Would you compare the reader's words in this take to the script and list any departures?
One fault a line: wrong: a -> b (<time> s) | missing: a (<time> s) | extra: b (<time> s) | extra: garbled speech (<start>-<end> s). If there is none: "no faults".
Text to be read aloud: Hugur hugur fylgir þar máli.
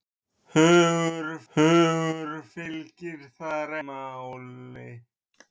no faults